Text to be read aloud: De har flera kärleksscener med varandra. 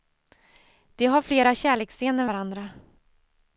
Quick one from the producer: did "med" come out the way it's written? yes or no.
no